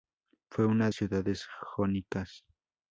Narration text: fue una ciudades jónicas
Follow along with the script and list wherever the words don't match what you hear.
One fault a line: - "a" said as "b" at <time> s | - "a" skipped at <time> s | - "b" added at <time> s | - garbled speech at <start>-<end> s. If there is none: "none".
none